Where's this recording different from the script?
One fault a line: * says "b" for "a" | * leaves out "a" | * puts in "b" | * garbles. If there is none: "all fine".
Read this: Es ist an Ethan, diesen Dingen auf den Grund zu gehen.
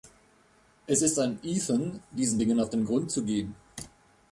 all fine